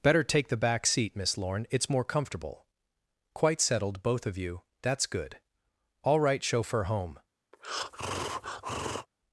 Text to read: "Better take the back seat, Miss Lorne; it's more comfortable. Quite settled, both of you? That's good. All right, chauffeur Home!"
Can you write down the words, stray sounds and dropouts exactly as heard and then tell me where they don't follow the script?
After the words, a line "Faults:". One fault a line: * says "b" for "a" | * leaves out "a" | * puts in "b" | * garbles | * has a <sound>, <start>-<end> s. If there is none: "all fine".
"Better take the back seat, Miss Lorne; it's more comfortable. Quite settled, both of you? That's good. All right, chauffeur Home!"
Faults:
* has a breath, 7.5-9.1 s